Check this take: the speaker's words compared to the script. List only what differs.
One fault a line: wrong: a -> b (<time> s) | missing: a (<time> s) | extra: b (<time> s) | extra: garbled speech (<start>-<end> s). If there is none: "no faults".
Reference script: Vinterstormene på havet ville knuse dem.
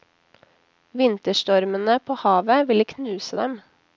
no faults